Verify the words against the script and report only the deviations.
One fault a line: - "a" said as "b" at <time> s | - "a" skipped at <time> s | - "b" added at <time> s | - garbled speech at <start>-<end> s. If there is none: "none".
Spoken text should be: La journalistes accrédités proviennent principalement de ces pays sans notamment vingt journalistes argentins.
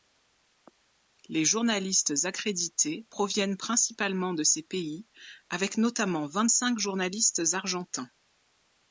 - "La" said as "Les" at 1.3 s
- "sans" said as "avec" at 5.5 s
- "cinq" added at 6.5 s